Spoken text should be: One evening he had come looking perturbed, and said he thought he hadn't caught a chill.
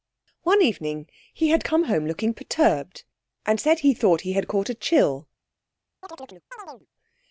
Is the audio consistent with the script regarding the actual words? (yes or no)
no